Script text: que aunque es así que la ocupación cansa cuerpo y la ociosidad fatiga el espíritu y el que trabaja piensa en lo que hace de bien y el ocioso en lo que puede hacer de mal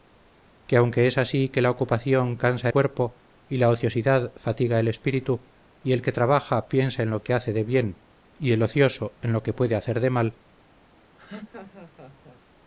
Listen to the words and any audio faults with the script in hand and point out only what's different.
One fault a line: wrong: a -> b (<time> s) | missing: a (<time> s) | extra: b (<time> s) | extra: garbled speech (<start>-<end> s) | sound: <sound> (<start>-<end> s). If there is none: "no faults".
sound: laugh (11.2-12.4 s)